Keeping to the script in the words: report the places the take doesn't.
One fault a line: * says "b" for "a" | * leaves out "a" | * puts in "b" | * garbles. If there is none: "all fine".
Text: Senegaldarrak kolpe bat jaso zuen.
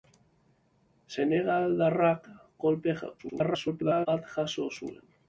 * garbles